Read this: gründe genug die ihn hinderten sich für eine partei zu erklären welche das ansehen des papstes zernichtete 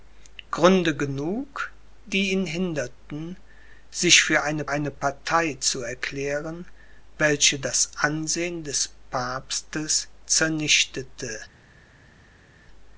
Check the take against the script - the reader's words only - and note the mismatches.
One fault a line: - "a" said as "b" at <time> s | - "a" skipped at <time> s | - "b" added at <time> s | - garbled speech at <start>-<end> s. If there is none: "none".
- "eine" added at 4.7 s